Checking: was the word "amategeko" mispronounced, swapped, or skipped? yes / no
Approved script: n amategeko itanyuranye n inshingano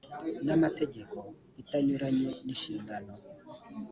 no